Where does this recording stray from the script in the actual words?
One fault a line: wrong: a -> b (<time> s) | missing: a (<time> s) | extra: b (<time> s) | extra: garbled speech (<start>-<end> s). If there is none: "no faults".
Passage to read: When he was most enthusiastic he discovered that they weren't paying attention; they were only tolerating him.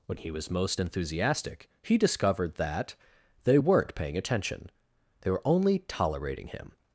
no faults